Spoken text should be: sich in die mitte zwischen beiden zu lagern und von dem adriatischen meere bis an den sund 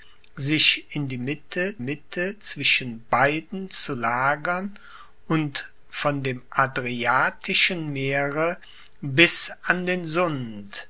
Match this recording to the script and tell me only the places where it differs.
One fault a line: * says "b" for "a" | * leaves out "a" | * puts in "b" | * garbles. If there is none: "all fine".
* puts in "mitte"